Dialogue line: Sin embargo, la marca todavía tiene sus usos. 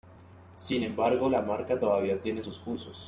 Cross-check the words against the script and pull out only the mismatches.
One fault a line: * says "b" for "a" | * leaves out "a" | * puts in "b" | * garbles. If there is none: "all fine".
all fine